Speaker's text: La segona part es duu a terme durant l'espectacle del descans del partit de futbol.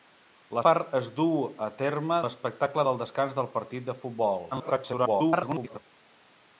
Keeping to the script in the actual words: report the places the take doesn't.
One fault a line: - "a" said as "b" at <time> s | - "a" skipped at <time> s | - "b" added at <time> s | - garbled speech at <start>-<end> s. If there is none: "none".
- "segona" skipped at 0.6 s
- "durant" skipped at 2.2 s
- garbled speech at 4.5-5.8 s